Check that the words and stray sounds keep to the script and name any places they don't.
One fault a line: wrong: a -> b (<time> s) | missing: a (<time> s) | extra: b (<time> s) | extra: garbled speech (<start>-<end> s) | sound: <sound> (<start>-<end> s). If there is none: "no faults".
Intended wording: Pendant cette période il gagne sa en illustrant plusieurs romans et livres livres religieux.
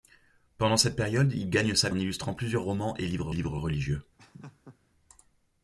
sound: laugh (4.2-4.8 s)